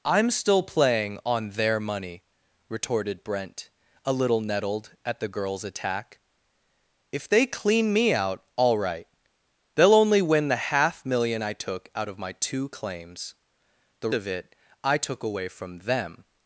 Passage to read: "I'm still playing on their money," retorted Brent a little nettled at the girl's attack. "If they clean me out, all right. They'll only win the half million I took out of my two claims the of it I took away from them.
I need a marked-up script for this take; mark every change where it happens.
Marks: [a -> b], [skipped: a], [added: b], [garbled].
"I'm still playing on their money," retorted Brent a little nettled at the girl's attack. "If they clean me out, all right. They'll only win the half million I took out of my two claims the of it I took away from them.